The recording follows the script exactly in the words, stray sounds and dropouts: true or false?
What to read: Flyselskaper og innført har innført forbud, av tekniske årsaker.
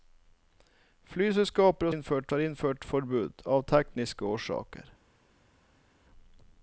true